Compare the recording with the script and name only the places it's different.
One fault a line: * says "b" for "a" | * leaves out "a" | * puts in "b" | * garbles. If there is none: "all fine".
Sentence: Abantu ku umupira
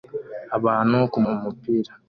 all fine